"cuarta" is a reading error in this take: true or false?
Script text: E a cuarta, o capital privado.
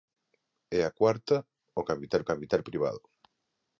false